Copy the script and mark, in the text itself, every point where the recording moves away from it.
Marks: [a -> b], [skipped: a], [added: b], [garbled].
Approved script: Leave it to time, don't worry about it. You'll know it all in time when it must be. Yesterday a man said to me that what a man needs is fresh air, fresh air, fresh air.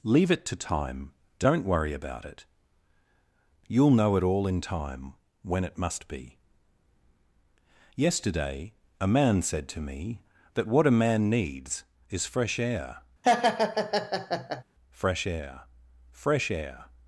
Leave it to time, don't worry about it. You'll know it all in time when it must be. Yesterday a man said to me that what a man needs is fresh air, fresh air, fresh air.